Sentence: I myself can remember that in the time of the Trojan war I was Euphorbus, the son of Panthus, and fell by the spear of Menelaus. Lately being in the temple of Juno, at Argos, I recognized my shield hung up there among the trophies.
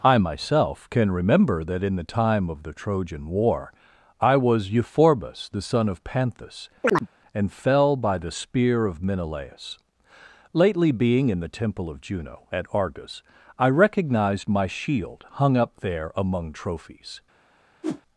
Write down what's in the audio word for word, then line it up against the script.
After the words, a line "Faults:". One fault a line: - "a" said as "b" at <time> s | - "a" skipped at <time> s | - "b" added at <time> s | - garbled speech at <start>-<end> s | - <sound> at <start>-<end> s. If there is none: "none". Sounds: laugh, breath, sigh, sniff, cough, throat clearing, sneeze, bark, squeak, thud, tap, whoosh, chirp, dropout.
I myself can remember that in the time of the Trojan war I was Euphorbus, the son of Panthus, and fell by the spear of Menelaus. Lately being in the temple of Juno, at Argos, I recognized my shield hung up there among trophies.
Faults:
- chirp at 6.8-7.1 s
- "the" skipped at 16.5 s
- whoosh at 17.8-18.0 s